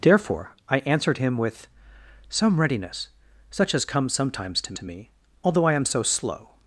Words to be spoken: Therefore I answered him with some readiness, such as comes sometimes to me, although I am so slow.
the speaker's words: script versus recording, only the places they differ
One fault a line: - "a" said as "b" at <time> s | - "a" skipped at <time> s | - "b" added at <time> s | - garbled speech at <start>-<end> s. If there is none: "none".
- "to" added at 4.7 s